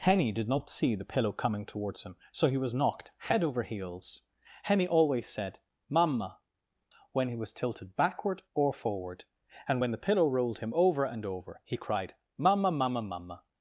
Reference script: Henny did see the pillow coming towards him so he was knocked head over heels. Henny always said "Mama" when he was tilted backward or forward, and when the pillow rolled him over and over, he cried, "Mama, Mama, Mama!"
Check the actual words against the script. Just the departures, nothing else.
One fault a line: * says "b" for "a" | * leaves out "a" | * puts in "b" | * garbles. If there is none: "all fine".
* puts in "not"